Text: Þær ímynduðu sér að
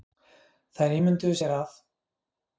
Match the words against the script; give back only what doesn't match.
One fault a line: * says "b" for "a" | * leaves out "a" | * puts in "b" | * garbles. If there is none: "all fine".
all fine